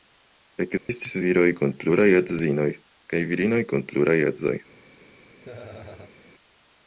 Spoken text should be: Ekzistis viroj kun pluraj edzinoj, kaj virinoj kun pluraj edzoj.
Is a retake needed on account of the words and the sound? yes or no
yes